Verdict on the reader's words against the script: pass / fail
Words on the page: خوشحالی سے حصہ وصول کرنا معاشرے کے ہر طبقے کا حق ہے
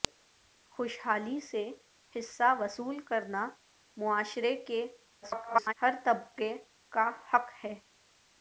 fail